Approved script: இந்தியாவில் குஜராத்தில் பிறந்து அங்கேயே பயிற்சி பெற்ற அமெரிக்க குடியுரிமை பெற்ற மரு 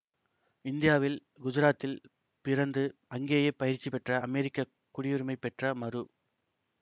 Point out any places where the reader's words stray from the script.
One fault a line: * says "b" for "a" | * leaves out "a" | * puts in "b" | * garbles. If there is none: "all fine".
all fine